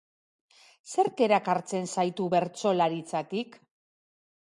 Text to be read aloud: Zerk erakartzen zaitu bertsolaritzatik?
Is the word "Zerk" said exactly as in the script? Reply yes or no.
yes